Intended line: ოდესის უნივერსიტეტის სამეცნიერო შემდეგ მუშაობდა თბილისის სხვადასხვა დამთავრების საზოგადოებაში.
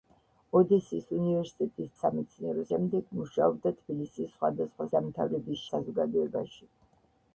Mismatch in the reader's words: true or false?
false